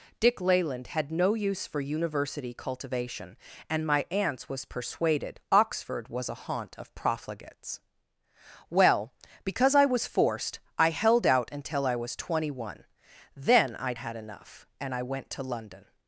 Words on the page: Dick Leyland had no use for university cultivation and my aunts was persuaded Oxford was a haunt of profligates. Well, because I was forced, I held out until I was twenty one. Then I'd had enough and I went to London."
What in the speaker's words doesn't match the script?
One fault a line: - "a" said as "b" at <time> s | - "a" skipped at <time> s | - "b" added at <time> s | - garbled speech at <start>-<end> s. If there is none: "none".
none